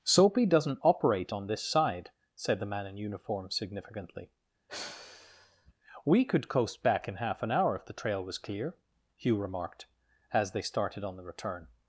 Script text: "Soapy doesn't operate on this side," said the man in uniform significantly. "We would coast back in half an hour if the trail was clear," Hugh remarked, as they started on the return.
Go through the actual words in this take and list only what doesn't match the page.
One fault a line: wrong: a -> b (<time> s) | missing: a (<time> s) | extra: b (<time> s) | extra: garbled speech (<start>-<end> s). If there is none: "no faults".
wrong: would -> could (6.2 s)